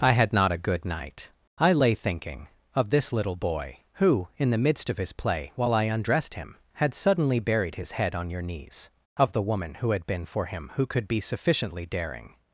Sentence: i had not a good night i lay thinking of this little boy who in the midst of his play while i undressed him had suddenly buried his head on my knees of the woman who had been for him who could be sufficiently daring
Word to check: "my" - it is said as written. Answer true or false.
false